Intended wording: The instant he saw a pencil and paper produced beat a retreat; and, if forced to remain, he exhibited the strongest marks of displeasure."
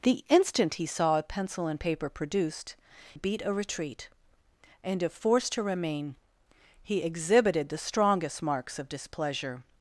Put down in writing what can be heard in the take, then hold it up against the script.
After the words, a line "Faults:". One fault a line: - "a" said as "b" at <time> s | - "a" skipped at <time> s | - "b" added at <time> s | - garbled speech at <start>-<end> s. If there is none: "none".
The instant he saw a pencil and paper produced beat a retreat; and, if forced to remain, he exhibited the strongest marks of displeasure."
Faults:
none